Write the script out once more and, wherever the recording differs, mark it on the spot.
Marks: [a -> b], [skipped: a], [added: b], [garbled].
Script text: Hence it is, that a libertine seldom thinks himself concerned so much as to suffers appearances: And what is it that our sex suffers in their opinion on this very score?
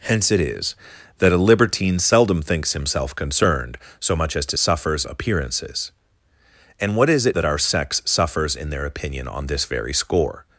Hence it is, that a libertine seldom thinks himself concerned so much as to suffers appearances: And what is it that our sex suffers in their opinion on this very score?